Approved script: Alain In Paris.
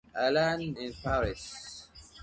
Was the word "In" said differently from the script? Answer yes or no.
no